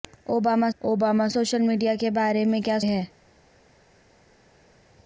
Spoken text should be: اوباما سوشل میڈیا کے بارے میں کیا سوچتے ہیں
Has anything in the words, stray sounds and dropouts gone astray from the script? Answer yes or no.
yes